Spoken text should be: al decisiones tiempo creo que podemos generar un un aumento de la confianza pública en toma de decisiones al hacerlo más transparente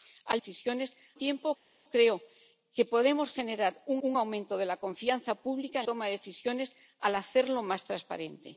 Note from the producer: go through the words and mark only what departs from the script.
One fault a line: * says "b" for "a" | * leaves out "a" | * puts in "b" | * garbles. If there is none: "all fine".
all fine